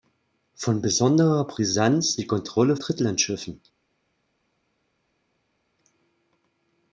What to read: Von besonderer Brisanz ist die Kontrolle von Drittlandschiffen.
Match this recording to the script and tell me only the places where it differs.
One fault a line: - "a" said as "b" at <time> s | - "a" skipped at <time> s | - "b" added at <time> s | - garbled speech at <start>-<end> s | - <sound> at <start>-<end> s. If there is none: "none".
- "ist" skipped at 2.1 s
- "von" skipped at 2.8 s